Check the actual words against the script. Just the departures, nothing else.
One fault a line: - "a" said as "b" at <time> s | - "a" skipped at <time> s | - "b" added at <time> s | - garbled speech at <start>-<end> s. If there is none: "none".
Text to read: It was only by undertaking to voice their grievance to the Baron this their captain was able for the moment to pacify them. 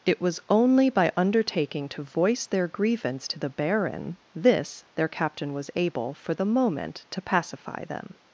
none